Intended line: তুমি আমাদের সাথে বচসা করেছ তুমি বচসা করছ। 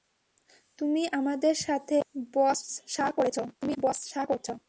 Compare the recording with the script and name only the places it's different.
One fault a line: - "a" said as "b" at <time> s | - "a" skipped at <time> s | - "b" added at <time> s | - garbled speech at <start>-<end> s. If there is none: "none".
none